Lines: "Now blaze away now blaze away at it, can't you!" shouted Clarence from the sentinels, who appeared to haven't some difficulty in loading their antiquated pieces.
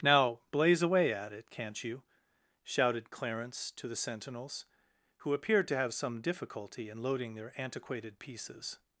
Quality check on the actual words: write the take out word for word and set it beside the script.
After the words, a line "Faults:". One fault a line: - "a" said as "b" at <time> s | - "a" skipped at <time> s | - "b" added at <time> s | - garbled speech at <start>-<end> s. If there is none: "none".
"Now blaze away at it, can't you!" shouted Clarence to the sentinels, who appeared to have some difficulty in loading their antiquated pieces.
Faults:
- "now blaze away" skipped at 1.1 s
- "from" said as "to" at 3.7 s
- "haven't" said as "have" at 5.8 s